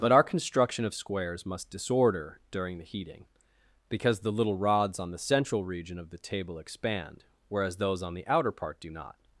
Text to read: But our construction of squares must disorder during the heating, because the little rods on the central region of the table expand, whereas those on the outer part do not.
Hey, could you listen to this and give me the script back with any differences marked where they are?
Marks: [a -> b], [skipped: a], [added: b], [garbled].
But our construction of squares must disorder during the heating, because the little rods on the central region of the table expand, whereas those on the outer part do not.